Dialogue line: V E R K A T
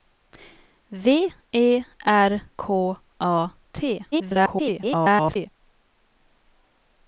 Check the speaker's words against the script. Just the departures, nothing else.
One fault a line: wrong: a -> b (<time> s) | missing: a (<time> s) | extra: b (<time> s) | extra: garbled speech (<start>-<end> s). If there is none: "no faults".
extra: garbled speech (4.1-5.5 s)